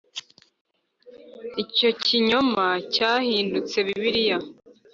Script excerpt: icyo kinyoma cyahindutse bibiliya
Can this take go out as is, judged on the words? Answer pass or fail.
pass